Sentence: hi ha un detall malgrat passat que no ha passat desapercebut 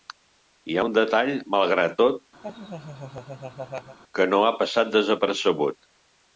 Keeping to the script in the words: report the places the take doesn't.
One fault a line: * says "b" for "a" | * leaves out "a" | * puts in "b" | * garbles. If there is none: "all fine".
* says "tot" for "passat"